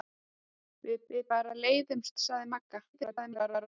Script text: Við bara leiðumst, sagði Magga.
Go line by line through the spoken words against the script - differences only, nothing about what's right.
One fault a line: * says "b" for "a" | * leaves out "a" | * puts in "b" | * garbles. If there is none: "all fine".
* puts in "við"
* garbles